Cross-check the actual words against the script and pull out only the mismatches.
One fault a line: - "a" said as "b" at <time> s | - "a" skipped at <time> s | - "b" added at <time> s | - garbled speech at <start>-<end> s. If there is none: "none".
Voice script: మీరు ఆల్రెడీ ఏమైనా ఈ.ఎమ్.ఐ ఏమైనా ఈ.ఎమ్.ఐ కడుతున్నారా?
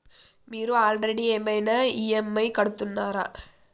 - "ఏమైనా ఈ.ఎమ్.ఐ" skipped at 2.5 s